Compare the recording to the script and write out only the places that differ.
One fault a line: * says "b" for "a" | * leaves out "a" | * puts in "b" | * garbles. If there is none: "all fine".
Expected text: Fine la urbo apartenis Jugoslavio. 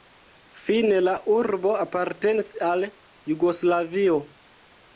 * puts in "al"